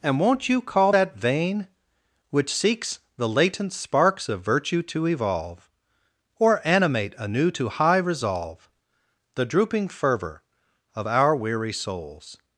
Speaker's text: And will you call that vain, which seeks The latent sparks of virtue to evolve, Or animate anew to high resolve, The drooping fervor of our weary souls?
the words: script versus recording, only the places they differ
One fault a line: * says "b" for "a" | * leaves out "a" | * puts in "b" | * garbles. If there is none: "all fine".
* says "won't" for "will"